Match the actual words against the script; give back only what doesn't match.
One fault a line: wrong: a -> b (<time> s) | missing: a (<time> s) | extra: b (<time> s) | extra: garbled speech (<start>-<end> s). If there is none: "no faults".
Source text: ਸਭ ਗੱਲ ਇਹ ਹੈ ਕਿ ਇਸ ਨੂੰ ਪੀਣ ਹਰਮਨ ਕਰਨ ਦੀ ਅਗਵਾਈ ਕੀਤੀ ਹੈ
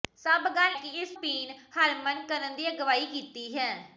missing: ਇਹ ਹੈ (0.8 s)
missing: ਨੂੰ (1.1 s)